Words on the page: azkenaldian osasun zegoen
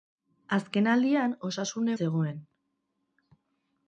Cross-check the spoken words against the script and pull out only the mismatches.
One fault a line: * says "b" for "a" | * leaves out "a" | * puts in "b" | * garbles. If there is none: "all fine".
all fine